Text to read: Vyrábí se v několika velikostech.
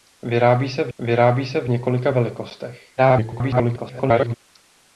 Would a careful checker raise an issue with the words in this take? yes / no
yes